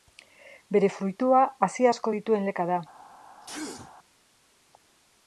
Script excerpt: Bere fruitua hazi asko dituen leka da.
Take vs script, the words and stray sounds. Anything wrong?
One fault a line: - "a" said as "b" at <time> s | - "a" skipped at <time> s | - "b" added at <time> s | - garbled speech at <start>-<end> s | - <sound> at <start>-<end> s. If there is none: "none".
- sneeze at 3.4-4.0 s